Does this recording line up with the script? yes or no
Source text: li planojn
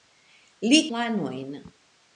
yes